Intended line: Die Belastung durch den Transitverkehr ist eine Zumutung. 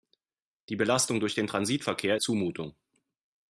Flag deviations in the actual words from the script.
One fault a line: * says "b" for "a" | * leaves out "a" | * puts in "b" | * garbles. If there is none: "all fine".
* leaves out "ist eine"